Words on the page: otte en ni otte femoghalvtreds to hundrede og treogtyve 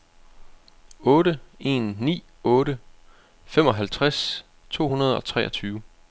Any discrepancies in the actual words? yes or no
no